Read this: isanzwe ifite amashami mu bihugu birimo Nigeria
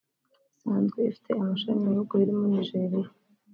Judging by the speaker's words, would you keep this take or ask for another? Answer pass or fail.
pass